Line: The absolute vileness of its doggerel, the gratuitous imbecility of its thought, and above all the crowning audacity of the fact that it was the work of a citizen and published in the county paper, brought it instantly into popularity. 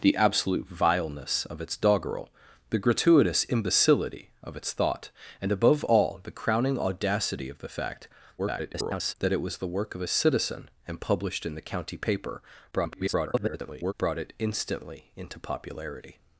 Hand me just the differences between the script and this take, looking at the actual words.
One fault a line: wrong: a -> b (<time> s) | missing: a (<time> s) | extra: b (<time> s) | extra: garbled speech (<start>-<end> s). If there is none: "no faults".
extra: garbled speech (8.4-9.1 s)
extra: garbled speech (12.7-13.9 s)